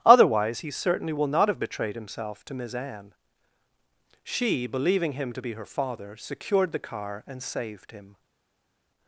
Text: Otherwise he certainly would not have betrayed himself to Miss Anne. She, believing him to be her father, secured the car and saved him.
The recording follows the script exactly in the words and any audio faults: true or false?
false